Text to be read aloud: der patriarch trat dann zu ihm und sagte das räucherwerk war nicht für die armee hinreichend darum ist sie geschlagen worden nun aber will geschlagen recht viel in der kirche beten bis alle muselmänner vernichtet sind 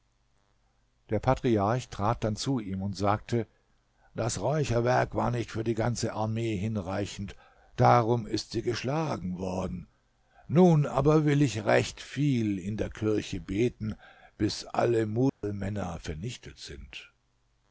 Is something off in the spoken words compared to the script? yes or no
yes